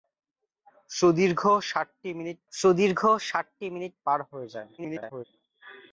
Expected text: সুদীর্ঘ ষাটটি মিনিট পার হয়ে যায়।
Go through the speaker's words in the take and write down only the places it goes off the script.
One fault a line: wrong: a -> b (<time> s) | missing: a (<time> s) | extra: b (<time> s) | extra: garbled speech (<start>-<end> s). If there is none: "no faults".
extra: সুদীর্ঘ ষাটটি মিনিট (2.5 s)
extra: garbled speech (4.8-5.2 s)